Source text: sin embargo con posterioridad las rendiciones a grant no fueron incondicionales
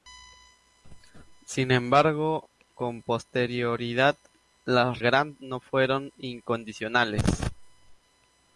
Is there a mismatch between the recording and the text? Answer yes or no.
yes